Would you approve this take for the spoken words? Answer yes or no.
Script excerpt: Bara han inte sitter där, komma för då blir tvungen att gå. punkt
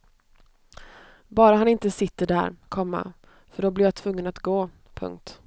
no